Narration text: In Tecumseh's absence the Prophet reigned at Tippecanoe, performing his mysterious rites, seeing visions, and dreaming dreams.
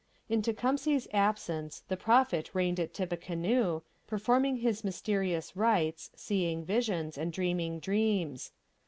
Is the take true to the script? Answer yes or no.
yes